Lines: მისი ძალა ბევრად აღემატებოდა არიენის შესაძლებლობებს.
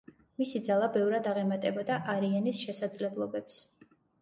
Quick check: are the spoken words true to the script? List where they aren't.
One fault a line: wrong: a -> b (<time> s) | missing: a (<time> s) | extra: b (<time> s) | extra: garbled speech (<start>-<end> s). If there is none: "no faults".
no faults